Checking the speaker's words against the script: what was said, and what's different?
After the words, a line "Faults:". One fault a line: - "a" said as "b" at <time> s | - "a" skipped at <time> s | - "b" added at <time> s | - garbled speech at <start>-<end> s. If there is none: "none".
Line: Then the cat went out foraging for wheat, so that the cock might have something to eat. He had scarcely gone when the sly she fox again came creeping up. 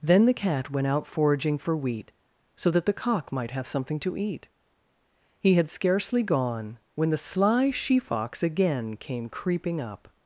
Then the cat went out foraging for wheat, so that the cock might have something to eat. He had scarcely gone when the sly she fox again came creeping up.
Faults:
none